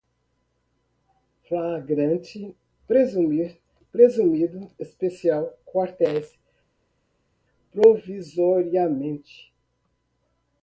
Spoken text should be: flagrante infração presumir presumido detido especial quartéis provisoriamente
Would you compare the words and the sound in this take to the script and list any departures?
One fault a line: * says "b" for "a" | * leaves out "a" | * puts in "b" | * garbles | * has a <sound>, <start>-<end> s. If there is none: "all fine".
* leaves out "infração"
* leaves out "detido"